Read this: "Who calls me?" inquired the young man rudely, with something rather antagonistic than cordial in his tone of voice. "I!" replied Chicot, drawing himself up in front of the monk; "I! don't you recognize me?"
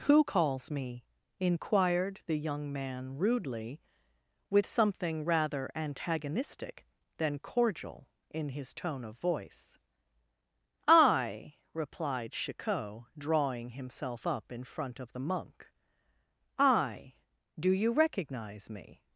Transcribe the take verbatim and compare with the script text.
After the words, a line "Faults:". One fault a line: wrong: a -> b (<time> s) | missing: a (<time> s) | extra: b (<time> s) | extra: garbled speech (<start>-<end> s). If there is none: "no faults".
"Who calls me?" inquired the young man rudely, with something rather antagonistic than cordial in his tone of voice. "I!" replied Chicot, drawing himself up in front of the monk; "I! do you recognize me?"
Faults:
wrong: don't -> do (17.6 s)